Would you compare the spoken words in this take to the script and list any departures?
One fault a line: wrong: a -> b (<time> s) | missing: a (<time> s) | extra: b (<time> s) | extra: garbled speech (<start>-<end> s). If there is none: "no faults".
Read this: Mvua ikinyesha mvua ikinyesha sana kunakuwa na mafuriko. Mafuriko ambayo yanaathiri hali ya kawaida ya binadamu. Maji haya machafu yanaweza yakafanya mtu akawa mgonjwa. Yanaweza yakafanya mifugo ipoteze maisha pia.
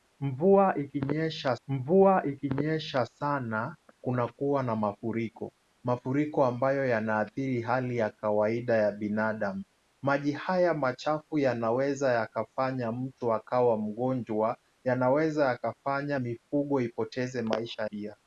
no faults